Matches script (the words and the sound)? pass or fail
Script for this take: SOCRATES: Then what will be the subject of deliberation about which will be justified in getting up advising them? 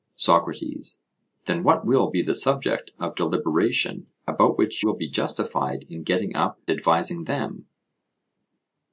pass